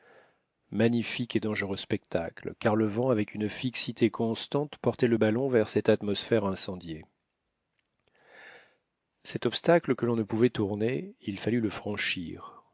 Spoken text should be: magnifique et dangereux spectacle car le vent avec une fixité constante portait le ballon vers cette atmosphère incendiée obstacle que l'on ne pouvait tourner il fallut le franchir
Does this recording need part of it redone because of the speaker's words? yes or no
yes